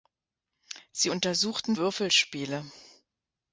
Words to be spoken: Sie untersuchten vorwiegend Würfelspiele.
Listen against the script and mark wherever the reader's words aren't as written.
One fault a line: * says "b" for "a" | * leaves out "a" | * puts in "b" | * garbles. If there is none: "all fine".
* leaves out "vorwiegend"